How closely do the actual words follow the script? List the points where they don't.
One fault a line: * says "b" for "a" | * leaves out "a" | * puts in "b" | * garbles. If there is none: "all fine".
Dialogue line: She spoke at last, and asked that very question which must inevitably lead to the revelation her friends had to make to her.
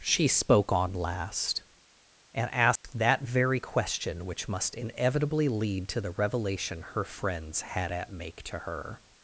* says "on" for "at"
* says "at" for "to"